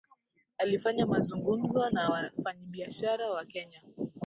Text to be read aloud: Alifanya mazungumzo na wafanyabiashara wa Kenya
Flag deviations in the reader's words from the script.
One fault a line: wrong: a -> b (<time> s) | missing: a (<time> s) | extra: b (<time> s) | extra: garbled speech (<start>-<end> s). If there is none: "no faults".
no faults